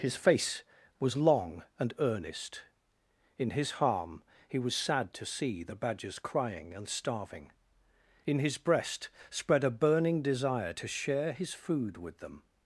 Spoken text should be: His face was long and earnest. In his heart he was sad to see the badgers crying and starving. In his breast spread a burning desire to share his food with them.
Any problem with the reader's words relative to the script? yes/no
yes